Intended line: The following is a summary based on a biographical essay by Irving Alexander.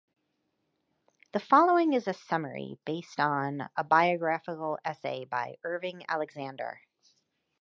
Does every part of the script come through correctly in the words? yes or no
yes